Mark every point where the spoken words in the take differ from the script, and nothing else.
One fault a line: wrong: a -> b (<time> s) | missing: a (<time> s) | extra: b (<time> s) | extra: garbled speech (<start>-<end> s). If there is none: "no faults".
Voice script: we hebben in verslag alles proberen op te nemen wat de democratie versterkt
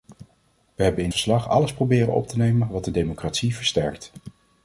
no faults